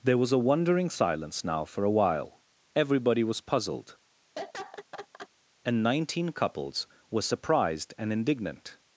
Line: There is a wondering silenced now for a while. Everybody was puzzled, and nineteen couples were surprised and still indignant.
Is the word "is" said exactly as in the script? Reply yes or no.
no